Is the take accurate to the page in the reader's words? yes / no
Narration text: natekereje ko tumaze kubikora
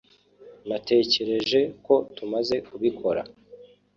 yes